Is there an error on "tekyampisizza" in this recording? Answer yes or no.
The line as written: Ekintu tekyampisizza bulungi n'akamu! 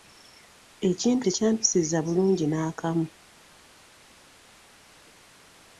no